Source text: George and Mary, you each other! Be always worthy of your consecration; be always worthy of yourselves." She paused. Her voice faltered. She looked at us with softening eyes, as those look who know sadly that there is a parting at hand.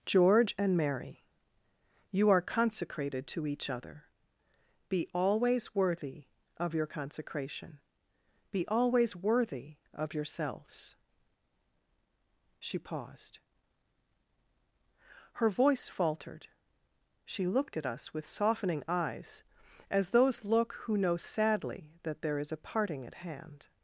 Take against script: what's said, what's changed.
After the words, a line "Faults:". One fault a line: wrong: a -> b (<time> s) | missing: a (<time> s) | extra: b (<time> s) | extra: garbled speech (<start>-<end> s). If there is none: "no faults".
George and Mary, you are consecrated to each other! Be always worthy of your consecration; be always worthy of yourselves." She paused. Her voice faltered. She looked at us with softening eyes, as those look who know sadly that there is a parting at hand.
Faults:
extra: are consecrated to (2.3 s)